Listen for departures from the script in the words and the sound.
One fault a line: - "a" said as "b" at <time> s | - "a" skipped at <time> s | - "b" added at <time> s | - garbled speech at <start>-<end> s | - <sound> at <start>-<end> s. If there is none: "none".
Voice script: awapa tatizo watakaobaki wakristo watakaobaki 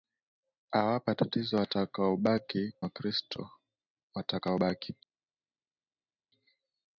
none